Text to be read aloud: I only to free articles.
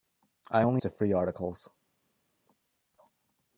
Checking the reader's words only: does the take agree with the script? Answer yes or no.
yes